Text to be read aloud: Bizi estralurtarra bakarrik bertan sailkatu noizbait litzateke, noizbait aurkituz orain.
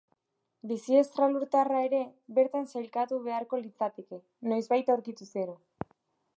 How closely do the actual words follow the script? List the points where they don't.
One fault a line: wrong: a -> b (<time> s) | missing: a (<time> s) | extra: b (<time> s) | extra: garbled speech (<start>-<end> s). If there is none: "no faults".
wrong: bakarrik -> ere (1.9 s)
wrong: noizbait -> beharko (3.3 s)
wrong: orain -> gero (5.4 s)